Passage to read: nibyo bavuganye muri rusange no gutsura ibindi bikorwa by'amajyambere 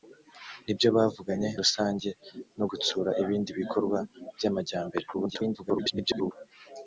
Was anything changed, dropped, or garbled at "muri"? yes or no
yes